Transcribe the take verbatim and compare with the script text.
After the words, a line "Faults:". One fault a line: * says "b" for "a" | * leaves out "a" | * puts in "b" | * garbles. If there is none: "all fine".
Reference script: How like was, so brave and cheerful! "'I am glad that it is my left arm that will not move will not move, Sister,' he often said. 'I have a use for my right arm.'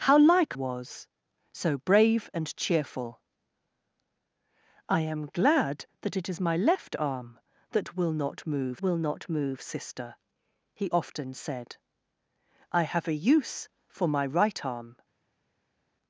How like was, so brave and cheerful! "'I am glad that it is my left arm that will not move will not move, Sister,' he often said. 'I have a use for my right arm.'
Faults:
all fine